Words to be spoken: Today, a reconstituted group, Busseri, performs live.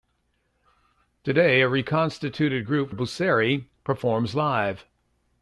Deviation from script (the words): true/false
false